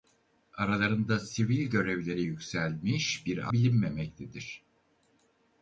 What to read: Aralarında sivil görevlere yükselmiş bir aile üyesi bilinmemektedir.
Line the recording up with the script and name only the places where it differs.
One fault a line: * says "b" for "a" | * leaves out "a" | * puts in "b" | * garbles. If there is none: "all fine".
* leaves out "aile üyesi"